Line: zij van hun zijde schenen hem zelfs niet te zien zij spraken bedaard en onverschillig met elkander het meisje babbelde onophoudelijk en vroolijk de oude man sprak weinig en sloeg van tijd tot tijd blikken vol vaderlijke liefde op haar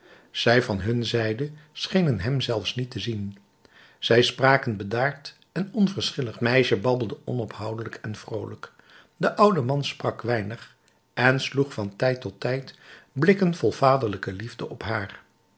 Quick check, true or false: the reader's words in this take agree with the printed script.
false